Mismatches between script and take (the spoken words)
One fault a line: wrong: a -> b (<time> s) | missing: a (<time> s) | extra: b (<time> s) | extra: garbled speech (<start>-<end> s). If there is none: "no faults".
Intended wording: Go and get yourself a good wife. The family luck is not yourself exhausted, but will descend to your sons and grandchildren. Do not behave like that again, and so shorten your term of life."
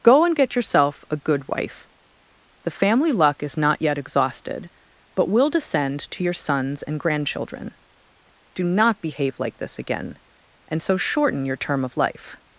wrong: yourself -> yet (3.8 s)
wrong: that -> this (9.6 s)